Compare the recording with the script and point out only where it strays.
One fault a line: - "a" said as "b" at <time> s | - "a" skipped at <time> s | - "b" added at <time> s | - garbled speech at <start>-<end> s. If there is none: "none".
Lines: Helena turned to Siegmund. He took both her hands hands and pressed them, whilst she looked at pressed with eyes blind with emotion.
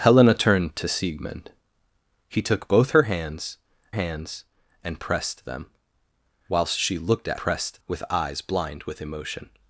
none